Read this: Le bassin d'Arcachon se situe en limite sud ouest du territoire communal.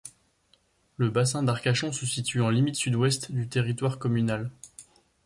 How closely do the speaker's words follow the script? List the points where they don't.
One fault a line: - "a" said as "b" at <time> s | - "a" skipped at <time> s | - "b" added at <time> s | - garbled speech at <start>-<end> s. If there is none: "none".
none